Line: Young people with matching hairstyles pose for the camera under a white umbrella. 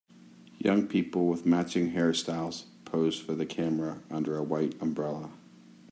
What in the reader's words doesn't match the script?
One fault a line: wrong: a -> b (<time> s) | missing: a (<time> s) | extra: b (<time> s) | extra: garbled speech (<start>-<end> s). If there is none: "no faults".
no faults